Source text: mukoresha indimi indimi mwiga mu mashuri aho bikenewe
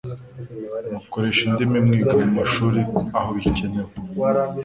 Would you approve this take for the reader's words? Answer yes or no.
no